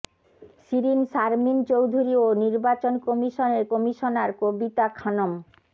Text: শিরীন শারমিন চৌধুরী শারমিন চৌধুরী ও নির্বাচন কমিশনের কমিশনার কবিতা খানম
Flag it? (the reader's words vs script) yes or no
yes